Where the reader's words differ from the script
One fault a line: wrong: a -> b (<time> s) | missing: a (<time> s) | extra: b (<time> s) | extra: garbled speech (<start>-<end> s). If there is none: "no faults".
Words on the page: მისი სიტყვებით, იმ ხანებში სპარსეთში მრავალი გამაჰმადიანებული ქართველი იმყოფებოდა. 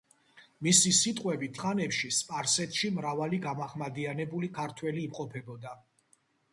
missing: იმ (1.6 s)